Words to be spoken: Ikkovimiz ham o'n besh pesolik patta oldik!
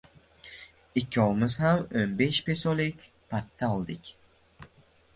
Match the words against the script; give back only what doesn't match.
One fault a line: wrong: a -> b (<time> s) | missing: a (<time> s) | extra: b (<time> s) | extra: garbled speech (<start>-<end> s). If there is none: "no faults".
no faults